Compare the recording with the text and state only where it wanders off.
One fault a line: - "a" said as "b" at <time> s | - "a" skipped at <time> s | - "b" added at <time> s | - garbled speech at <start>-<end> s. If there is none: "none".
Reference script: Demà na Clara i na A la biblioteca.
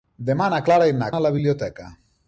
none